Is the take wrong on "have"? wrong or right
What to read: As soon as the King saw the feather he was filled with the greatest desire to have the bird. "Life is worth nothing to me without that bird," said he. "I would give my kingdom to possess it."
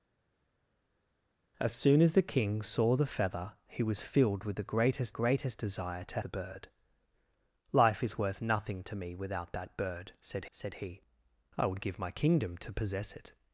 wrong